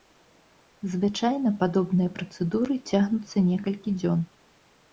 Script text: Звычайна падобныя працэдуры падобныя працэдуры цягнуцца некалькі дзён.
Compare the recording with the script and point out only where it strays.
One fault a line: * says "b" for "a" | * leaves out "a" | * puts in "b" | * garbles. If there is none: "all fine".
* leaves out "падобныя працэдуры"